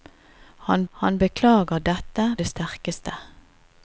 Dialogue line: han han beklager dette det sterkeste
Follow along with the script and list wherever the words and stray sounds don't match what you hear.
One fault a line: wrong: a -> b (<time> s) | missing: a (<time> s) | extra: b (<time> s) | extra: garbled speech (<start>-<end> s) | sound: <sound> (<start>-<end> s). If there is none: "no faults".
no faults